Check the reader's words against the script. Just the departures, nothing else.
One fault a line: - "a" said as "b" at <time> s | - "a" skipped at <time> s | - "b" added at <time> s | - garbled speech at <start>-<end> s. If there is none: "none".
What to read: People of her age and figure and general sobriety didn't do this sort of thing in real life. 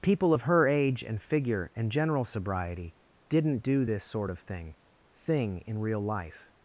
- "thing" added at 5.1 s